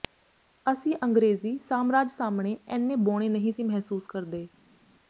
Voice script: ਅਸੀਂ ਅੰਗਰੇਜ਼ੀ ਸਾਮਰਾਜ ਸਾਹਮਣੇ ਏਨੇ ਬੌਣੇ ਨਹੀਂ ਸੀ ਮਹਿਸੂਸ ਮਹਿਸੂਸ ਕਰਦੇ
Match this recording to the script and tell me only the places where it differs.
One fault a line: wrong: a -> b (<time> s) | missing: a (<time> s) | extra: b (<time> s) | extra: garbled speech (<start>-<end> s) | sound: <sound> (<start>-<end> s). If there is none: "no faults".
missing: ਮਹਿਸੂਸ (4.1 s)